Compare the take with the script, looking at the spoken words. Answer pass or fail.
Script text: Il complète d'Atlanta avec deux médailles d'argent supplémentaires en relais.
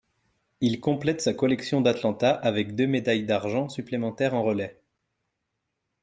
fail